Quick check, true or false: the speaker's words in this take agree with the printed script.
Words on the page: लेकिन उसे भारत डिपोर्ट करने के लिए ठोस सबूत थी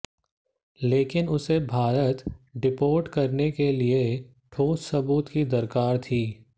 false